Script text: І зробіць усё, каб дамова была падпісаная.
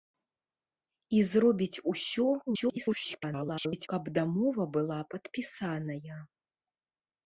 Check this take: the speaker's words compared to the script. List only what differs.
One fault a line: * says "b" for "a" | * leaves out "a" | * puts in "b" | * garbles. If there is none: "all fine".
* garbles